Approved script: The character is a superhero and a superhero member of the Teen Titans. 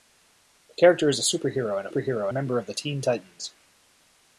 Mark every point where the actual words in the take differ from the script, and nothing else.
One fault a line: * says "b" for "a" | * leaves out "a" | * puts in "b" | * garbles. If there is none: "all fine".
all fine